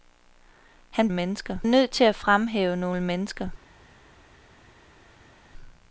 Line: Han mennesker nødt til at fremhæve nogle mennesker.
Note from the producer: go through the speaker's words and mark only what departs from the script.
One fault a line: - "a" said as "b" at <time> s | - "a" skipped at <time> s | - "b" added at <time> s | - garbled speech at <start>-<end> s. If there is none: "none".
none